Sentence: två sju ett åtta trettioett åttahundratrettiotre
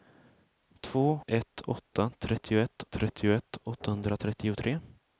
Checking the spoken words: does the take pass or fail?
fail